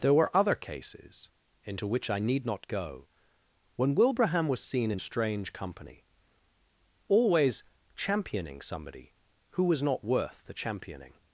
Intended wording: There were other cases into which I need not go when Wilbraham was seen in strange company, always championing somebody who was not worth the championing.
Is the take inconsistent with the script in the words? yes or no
no